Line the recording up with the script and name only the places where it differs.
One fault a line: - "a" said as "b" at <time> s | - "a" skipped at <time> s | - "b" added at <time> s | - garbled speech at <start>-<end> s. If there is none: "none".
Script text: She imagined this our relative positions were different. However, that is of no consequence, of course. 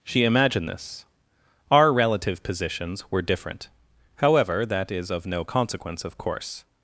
none